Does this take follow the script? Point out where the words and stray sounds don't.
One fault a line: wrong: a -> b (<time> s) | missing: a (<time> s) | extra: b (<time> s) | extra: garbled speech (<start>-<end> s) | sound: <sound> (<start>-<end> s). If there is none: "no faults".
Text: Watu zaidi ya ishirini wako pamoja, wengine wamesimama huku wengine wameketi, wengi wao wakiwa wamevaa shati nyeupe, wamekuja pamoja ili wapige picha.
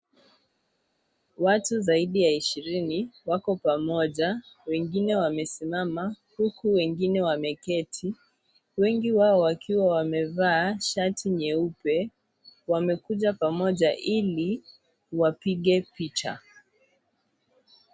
no faults